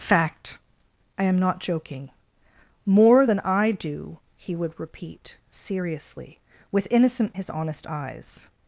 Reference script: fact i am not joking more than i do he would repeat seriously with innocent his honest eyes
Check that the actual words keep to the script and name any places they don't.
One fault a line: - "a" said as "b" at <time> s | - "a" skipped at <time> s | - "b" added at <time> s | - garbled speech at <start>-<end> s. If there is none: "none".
none